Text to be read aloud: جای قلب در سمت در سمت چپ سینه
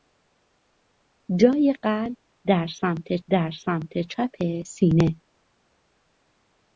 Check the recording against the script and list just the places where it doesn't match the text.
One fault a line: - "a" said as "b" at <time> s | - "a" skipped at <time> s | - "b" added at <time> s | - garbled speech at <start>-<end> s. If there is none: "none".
none